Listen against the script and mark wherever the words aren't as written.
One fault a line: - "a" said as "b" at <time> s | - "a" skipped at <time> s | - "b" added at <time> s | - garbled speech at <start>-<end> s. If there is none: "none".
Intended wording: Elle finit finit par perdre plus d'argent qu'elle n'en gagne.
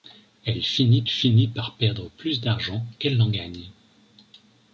none